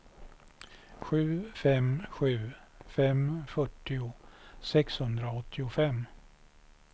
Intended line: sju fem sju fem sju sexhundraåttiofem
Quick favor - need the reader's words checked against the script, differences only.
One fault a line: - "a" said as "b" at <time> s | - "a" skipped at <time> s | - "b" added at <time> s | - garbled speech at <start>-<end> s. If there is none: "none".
- "sju" said as "fyrtio" at 3.5 s